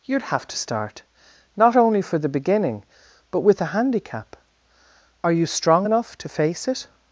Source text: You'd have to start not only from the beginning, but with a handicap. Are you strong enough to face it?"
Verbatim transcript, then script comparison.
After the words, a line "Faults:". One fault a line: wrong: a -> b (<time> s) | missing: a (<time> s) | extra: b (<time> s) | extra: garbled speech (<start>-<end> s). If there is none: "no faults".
You'd have to start not only for the beginning, but with a handicap. Are you strong enough to face it?"
Faults:
wrong: from -> for (2.0 s)